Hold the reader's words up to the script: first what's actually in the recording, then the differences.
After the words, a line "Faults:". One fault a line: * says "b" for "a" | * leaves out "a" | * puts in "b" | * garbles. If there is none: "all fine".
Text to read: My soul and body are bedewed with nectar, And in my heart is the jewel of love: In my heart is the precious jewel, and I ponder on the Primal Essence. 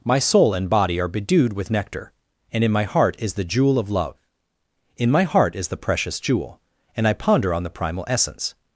My soul and body are bedewed with nectar, And in my heart is the jewel of love: In my heart is the precious jewel, and I ponder on the Primal Essence.
Faults:
all fine